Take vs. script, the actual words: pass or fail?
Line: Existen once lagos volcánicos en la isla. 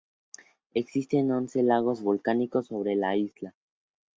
fail